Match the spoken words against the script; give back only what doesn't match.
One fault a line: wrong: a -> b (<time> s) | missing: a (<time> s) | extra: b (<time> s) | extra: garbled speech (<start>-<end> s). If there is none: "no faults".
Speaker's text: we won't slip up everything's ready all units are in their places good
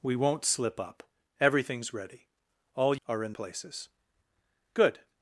missing: units (3.0 s)
missing: their (3.3 s)